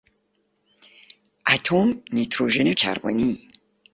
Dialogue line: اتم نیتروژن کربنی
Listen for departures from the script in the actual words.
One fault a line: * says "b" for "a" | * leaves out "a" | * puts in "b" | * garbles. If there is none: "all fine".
all fine